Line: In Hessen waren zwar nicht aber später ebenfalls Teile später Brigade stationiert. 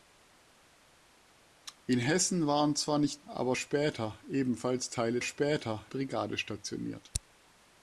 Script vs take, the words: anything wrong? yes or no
no